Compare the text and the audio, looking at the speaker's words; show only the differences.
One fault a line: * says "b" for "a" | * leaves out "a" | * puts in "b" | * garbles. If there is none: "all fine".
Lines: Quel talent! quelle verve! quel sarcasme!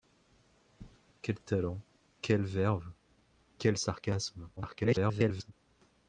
* garbles